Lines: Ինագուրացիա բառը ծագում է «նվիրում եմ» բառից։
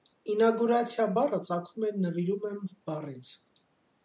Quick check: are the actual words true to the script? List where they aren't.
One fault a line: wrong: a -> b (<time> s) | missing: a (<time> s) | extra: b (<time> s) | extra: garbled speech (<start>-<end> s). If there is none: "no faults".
no faults